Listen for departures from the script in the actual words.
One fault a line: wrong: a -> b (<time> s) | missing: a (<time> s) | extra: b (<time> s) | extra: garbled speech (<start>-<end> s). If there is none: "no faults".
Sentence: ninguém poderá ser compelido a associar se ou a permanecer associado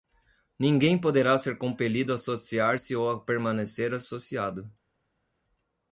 no faults